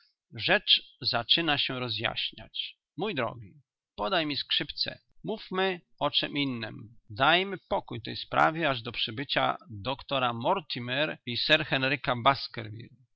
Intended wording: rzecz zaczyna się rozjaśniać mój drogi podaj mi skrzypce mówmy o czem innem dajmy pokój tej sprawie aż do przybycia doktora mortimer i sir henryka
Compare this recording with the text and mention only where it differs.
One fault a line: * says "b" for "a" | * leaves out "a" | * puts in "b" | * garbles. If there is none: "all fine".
all fine